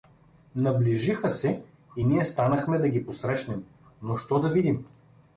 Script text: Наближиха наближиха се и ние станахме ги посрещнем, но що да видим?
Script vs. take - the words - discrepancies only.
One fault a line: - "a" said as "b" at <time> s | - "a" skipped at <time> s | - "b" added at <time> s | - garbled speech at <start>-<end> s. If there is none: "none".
- "наближиха" skipped at 1.3 s
- "да" added at 2.8 s